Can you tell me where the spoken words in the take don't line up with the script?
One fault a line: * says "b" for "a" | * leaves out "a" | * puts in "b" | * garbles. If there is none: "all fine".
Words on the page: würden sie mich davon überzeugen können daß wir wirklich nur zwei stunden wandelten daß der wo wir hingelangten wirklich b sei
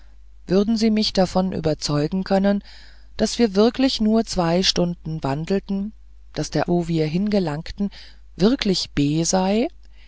all fine